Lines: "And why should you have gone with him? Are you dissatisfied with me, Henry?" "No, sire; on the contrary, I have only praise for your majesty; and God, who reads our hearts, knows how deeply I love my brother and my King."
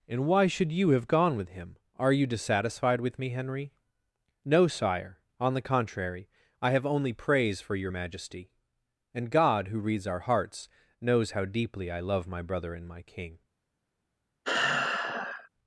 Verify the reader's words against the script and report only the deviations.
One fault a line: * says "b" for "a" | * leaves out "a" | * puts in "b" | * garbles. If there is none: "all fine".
all fine